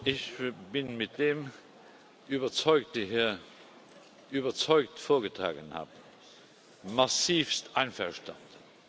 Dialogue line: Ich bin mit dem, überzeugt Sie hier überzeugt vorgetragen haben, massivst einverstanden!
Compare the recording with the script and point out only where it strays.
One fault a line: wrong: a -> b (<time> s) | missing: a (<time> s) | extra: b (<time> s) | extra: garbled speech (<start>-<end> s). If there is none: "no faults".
no faults